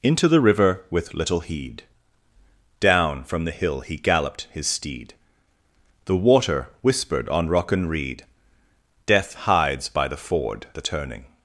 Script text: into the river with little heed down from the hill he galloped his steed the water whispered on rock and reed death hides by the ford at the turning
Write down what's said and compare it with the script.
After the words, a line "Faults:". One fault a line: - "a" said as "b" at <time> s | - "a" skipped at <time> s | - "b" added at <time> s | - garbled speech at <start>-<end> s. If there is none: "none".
into the river with little heed down from the hill he galloped his steed the water whispered on rock and reed death hides by the ford the turning
Faults:
- "at" skipped at 10.7 s